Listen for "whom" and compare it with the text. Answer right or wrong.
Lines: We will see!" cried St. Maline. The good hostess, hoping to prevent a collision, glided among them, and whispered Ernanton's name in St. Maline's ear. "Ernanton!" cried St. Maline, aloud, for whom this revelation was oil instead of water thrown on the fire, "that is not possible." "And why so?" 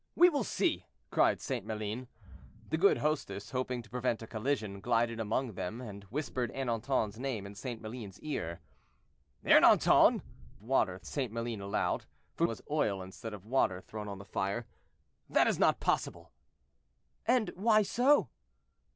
wrong